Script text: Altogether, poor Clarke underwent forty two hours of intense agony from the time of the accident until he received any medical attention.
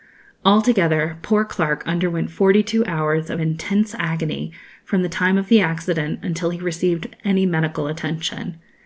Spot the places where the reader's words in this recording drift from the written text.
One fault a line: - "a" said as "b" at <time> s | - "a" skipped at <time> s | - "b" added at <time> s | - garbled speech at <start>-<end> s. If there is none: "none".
none